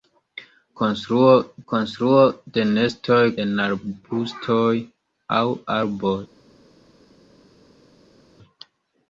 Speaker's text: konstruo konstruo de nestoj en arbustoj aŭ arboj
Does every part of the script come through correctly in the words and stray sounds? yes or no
yes